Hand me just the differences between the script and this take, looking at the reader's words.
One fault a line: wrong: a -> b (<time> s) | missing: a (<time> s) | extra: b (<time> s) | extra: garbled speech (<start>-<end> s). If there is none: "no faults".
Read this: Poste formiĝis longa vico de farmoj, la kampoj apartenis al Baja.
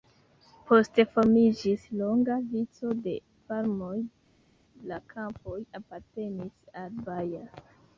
no faults